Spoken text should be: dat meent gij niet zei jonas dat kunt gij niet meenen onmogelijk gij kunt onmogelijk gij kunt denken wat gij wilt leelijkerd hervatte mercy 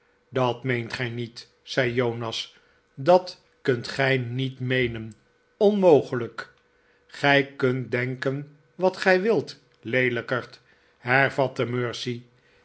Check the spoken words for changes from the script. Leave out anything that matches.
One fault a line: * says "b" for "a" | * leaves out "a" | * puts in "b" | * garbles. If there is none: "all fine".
* leaves out "onmogelijk gij kunt"